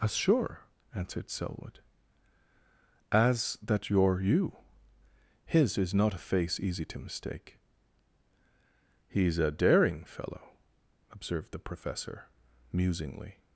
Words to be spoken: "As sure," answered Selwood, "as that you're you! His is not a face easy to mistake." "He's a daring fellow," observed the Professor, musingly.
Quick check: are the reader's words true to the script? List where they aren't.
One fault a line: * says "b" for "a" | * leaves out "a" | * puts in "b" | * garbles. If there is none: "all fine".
all fine